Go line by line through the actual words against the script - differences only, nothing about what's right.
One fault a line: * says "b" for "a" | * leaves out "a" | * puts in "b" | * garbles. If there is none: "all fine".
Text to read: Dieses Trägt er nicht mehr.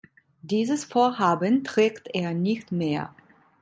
* puts in "Vorhaben"